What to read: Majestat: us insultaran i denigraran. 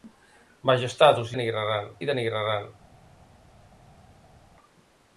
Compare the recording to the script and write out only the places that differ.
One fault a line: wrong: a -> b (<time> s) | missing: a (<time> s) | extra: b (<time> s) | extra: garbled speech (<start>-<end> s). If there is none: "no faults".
wrong: insultaran -> denigraran (1.3 s)